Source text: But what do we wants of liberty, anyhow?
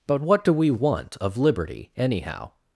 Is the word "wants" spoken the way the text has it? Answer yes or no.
no